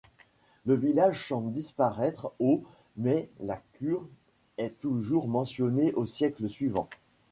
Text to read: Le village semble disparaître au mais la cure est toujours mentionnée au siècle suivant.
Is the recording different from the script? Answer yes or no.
no